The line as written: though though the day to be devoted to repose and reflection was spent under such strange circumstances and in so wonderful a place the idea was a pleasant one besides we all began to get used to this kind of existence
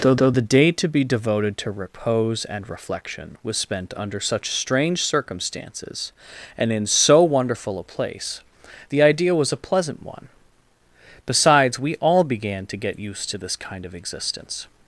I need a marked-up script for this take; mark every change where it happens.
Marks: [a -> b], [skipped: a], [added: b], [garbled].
though though the day to be devoted to repose and reflection was spent under such strange circumstances and in so wonderful a place the idea was a pleasant one besides we all began to get used to this kind of existence